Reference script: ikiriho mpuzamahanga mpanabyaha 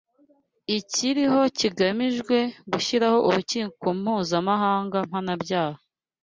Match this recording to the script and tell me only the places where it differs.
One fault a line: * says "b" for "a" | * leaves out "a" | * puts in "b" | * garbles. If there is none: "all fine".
* puts in "kigamijwe gushyiraho Urukiko"